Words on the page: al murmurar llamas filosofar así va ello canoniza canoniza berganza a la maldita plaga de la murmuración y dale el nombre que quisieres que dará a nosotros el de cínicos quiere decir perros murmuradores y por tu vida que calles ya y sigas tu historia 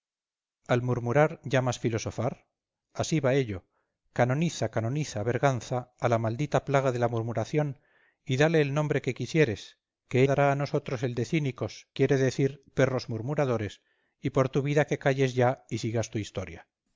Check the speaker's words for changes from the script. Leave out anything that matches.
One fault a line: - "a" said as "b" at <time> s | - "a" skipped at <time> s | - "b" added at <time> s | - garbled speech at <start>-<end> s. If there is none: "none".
none